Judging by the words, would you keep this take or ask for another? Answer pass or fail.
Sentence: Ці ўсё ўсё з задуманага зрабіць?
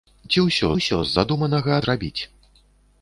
pass